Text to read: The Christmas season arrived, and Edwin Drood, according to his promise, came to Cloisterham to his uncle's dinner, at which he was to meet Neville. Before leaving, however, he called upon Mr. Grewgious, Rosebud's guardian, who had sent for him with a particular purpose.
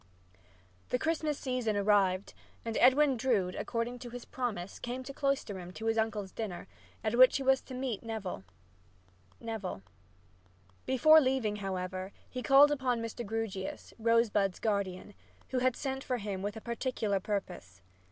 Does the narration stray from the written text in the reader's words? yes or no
yes